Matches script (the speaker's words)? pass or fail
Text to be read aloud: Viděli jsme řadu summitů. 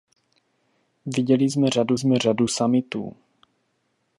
fail